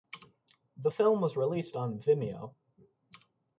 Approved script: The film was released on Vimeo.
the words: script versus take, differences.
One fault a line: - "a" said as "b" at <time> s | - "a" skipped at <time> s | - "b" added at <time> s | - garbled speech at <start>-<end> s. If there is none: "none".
none